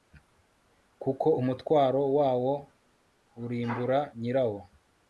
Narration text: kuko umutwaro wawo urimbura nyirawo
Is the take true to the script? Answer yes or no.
yes